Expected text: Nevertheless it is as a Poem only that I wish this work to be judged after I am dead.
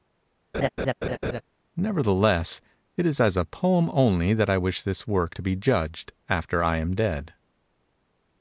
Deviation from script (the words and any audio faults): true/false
true